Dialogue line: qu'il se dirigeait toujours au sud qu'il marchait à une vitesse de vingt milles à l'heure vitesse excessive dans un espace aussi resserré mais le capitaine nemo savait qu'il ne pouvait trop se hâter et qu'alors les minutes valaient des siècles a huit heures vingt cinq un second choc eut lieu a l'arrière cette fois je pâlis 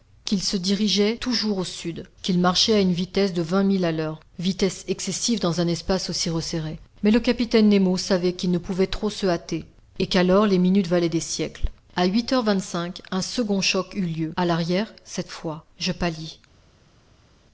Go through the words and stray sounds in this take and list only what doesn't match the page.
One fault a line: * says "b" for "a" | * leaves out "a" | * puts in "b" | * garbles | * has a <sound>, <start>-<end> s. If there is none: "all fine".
all fine